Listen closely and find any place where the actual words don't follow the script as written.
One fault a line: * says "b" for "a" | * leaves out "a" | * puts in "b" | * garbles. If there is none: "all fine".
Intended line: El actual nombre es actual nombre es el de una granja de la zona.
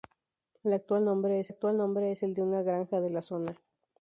all fine